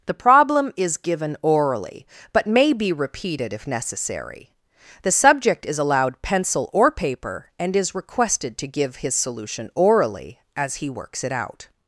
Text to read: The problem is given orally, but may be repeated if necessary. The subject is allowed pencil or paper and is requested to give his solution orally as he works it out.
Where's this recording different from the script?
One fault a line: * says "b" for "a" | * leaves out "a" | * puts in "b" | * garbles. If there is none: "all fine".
all fine